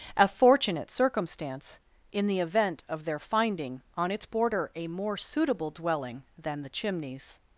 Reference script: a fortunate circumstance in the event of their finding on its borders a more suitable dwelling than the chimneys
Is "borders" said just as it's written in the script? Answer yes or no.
no